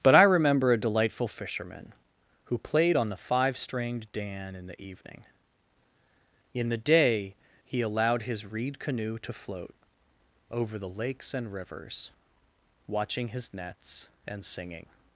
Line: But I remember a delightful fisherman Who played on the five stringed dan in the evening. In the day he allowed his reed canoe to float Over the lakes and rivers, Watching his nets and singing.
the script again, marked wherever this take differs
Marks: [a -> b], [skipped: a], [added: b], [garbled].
But I remember a delightful fisherman Who played on the five stringed dan in the evening. In the day he allowed his reed canoe to float Over the lakes and rivers, Watching his nets and singing.